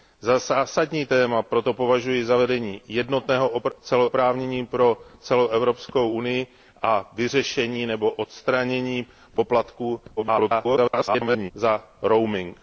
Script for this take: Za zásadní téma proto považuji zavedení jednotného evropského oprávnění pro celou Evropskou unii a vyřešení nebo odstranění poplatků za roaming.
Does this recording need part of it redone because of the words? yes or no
yes